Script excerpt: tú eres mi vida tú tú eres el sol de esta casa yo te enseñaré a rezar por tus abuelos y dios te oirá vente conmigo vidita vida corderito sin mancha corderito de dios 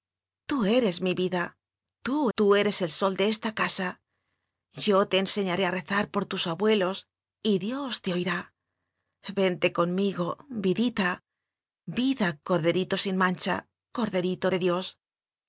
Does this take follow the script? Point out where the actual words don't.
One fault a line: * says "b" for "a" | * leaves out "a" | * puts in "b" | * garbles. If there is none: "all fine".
all fine